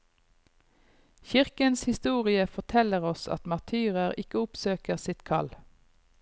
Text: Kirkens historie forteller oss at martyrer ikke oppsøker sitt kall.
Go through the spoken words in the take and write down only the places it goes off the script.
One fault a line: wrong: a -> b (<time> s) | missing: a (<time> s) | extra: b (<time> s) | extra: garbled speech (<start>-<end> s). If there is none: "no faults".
no faults